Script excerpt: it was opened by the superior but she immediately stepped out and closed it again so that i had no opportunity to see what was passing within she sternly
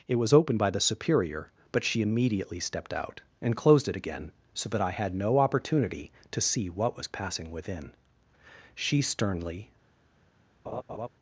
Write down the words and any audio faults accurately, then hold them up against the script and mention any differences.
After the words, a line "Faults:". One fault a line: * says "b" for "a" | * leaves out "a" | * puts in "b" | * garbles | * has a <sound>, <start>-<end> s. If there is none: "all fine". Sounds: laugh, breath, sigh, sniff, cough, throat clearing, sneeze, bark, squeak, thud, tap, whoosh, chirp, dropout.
it was opened by the superior but she immediately stepped out and closed it again so that i had no opportunity to see what was passing within she sternly
Faults:
* has a laugh, 10.7-11.1 s